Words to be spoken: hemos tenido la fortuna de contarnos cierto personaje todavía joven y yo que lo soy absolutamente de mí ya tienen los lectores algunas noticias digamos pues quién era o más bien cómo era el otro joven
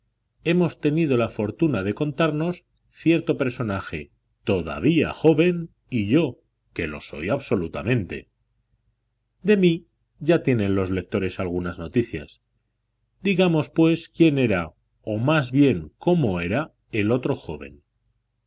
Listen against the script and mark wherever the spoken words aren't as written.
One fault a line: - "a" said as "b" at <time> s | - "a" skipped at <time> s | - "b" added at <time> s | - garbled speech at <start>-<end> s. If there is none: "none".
none